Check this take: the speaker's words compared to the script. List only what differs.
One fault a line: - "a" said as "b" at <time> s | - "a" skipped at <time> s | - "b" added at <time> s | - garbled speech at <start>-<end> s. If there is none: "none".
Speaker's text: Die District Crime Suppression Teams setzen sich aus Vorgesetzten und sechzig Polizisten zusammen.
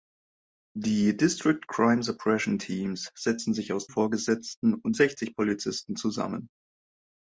none